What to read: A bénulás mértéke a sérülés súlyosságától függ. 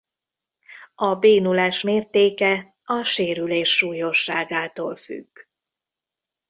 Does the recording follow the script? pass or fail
pass